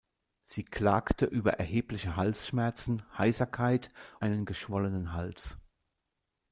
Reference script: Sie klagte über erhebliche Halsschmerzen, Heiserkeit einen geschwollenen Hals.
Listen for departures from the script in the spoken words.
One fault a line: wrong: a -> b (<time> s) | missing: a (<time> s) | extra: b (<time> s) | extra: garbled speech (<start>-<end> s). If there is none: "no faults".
no faults